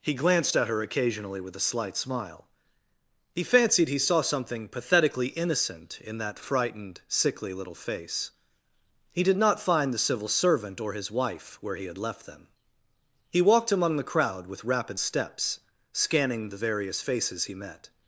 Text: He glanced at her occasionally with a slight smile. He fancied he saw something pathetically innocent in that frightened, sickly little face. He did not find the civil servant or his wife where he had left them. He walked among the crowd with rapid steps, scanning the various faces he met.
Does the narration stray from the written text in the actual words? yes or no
no